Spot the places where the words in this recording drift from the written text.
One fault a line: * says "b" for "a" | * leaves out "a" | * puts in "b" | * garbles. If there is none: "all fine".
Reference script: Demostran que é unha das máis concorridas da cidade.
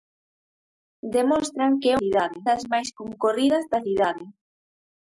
* says "cidade" for "unha"